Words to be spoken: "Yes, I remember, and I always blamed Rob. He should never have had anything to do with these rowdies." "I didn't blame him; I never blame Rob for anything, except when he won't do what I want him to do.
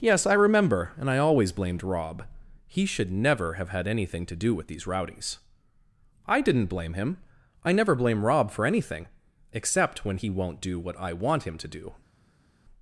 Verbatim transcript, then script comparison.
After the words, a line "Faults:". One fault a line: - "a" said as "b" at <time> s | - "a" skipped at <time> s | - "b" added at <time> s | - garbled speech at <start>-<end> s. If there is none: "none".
"Yes, I remember, and I always blamed Rob. He should never have had anything to do with these rowdies." "I didn't blame him; I never blame Rob for anything, except when he won't do what I want him to do.
Faults:
none